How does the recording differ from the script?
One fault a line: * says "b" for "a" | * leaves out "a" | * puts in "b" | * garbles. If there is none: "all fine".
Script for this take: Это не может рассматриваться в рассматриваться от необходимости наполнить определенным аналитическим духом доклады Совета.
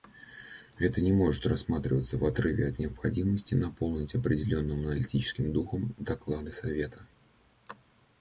* says "отрыве" for "рассматриваться"